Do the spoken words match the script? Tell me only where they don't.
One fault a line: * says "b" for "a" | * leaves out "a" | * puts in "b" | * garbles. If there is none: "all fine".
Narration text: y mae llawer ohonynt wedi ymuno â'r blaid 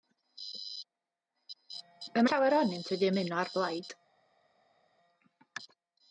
* leaves out "mae"